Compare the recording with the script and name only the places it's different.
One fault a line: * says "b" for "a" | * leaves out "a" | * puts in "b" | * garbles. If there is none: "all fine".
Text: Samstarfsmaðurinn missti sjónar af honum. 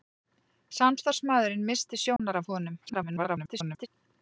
* garbles